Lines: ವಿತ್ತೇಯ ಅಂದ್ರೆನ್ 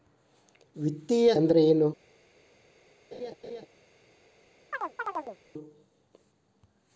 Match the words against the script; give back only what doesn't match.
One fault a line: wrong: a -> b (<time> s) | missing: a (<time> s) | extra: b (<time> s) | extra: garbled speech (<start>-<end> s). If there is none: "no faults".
no faults